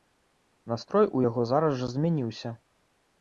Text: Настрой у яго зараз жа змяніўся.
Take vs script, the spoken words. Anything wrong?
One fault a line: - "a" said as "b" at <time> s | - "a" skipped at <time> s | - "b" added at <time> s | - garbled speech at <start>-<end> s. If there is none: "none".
none